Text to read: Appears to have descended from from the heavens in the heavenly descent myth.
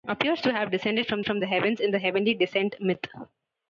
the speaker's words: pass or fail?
pass